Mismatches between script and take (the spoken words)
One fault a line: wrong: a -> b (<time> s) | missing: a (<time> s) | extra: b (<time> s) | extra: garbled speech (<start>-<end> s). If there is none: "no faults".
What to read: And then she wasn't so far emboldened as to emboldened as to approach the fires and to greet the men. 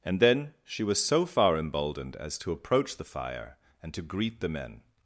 wrong: wasn't -> was (0.8 s)
missing: emboldened as to (2.5 s)
wrong: fires -> fire (3.0 s)